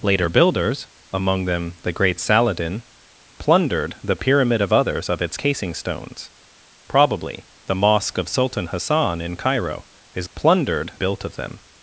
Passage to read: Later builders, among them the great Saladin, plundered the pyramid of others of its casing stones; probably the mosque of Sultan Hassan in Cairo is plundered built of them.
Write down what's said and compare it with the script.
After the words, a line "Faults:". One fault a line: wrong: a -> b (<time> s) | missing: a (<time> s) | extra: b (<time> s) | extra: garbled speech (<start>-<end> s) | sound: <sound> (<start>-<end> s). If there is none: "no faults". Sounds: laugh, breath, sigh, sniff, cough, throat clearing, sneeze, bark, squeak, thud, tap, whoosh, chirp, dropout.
Later builders, among them the great Saladin, plundered the pyramid of others of its casing stones; probably the mosque of Sultan Hassan in Cairo is plundered built of them.
Faults:
no faults